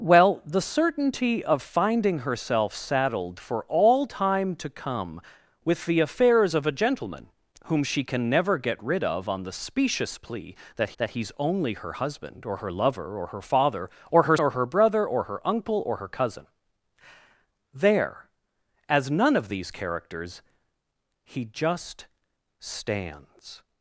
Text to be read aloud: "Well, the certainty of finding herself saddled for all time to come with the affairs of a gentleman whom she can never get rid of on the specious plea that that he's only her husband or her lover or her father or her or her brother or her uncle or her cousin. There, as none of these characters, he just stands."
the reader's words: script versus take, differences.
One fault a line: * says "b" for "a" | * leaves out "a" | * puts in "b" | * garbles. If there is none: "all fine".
all fine